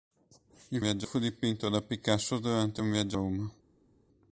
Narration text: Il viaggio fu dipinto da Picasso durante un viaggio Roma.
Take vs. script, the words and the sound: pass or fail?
pass